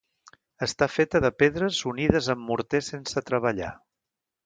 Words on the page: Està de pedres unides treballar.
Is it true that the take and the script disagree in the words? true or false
true